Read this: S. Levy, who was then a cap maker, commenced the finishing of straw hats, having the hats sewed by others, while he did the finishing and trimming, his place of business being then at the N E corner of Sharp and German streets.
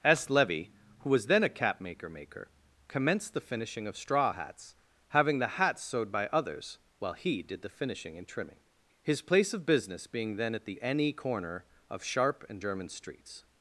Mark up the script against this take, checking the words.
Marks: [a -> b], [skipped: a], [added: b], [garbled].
S. Levy, who was then a cap maker, [added: maker] commenced the finishing of straw hats, having the hats sewed by others, while he did the finishing and trimming, his place of business being then at the N E corner of Sharp and German streets.